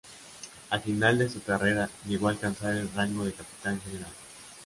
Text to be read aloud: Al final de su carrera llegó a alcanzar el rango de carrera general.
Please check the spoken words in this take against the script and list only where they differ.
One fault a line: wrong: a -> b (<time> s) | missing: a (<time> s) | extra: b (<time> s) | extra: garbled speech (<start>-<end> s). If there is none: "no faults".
wrong: carrera -> capitán (3.3 s)